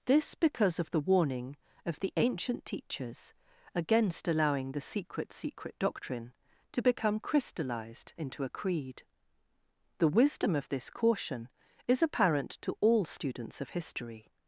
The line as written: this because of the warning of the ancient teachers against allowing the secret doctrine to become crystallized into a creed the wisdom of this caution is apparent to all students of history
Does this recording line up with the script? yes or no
no